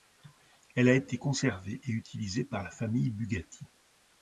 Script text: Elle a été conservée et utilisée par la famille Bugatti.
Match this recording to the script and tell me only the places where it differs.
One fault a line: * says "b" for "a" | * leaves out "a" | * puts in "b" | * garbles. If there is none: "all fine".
all fine